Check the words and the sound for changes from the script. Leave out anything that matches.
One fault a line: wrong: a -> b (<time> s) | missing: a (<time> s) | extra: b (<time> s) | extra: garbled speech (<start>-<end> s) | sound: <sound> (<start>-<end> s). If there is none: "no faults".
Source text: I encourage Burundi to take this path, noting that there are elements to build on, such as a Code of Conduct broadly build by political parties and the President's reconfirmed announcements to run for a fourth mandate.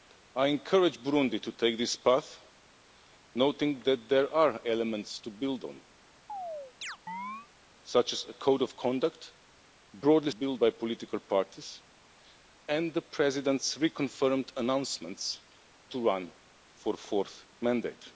sound: chirp (6.3-7.5 s)